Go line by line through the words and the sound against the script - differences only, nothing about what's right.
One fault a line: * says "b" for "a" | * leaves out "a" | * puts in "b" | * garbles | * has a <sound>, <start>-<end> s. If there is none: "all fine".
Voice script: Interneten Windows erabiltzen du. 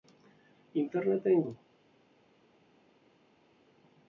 * leaves out "Windows erabiltzen"